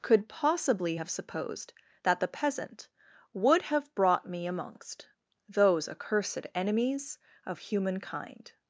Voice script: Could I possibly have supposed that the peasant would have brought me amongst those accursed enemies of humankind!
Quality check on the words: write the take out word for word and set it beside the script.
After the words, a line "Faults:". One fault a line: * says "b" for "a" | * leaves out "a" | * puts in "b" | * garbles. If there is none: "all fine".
Could possibly have supposed that the peasant would have brought me amongst those accursed enemies of humankind!
Faults:
* leaves out "I"